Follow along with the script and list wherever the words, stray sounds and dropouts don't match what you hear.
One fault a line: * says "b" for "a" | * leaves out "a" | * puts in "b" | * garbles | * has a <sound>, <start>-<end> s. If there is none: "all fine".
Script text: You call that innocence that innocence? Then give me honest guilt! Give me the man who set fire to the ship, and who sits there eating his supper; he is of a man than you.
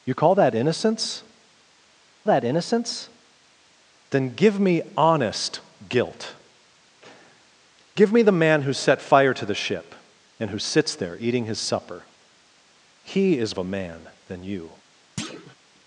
* has a thud, 15.2-15.6 s